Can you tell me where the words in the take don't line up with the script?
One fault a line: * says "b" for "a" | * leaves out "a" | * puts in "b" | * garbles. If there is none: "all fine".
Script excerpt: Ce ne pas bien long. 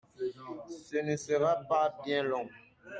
* puts in "sera"